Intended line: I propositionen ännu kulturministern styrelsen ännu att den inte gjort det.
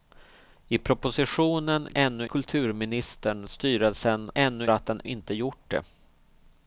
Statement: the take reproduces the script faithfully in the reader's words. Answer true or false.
true